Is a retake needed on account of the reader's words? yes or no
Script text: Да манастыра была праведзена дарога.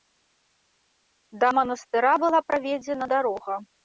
no